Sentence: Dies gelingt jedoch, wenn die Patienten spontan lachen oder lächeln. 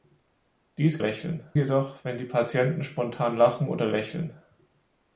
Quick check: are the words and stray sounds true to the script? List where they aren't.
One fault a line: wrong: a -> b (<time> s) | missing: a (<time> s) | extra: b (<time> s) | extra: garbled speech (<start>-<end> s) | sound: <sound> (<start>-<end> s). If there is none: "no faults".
wrong: gelingt -> lächeln (1.0 s)